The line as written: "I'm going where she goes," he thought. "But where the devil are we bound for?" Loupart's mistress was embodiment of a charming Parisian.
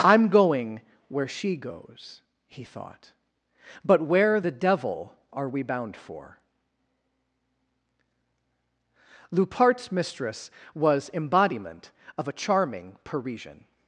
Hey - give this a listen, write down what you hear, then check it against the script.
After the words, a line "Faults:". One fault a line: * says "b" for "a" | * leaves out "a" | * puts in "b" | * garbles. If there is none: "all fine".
"I'm going where she goes," he thought. "But where the devil are we bound for?" Loupart's mistress was embodiment of a charming Parisian.
Faults:
all fine